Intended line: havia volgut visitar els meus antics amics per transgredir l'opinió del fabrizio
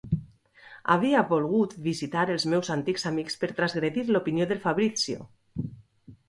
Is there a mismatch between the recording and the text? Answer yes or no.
no